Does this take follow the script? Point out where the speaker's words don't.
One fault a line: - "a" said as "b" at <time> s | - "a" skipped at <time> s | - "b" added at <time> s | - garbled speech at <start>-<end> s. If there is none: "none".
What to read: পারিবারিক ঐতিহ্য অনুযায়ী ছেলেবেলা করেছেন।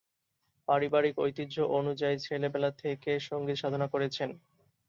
- "থেকে সঙ্গীত সাধনা" added at 2.8 s